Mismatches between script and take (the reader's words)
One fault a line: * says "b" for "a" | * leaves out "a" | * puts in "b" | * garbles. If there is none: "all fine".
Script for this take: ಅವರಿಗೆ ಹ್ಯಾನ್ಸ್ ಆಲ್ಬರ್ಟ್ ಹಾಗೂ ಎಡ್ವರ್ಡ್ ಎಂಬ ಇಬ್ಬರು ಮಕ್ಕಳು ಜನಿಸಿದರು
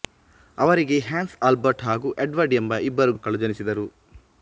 all fine